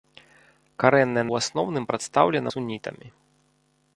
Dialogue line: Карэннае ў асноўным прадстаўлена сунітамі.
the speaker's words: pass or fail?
pass